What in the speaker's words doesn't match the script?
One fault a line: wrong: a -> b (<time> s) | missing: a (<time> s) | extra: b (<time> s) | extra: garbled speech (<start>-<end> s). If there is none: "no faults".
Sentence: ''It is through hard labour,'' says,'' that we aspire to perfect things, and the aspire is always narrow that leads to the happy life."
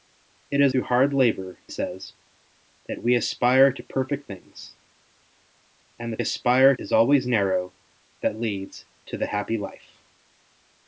no faults